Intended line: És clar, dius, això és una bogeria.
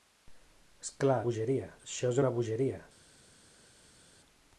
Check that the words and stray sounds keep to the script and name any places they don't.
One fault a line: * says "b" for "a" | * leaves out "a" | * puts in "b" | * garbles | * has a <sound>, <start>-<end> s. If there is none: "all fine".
* says "bogeria" for "dius"